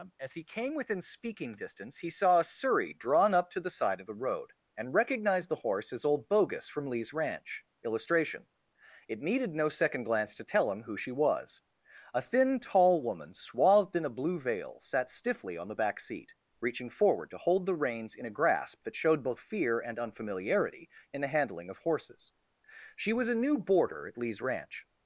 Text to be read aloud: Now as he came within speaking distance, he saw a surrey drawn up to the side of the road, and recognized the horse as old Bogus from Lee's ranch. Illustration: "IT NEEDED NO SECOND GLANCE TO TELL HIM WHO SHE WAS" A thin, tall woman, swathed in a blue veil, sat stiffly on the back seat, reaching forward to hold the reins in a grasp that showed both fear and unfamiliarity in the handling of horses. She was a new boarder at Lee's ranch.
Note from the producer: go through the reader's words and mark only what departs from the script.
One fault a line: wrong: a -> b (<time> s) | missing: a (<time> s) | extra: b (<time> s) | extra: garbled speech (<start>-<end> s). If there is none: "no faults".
missing: Now (0.2 s)